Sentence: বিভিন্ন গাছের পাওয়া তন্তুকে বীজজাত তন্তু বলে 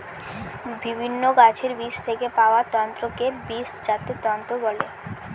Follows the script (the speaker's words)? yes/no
no